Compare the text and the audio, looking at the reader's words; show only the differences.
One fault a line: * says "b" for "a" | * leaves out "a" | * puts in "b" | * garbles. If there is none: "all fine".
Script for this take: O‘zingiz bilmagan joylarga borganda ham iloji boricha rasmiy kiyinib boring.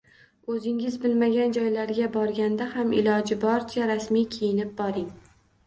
all fine